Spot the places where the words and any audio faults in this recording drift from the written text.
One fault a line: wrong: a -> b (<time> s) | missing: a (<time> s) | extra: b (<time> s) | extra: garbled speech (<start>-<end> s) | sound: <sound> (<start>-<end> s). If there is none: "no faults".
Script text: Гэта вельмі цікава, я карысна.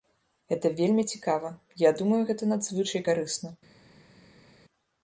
extra: думаю гэта надзвычай (2.0 s)